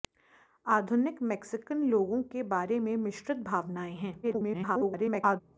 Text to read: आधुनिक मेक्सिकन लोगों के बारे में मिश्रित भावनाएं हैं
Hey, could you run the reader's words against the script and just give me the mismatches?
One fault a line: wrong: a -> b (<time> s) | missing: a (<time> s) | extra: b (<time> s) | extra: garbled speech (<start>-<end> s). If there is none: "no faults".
extra: garbled speech (4.2-5.4 s)